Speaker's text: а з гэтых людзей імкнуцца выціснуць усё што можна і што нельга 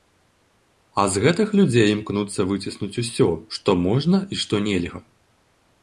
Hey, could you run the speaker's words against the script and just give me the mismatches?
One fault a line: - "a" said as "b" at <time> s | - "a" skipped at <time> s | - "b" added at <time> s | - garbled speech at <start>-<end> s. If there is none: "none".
none